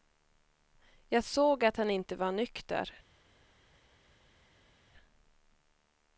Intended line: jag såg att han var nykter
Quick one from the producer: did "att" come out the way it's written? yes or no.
yes